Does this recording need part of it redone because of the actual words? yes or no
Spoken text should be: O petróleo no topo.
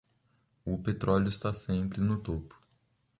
yes